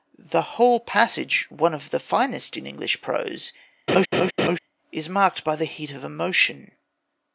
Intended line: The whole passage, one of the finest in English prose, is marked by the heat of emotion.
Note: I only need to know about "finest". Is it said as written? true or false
true